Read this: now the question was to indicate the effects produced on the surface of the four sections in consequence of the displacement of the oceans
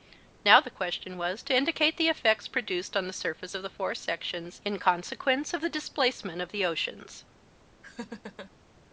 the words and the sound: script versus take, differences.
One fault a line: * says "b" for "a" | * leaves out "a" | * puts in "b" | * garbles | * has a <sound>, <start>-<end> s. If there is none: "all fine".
* has a laugh, 7.8-8.5 s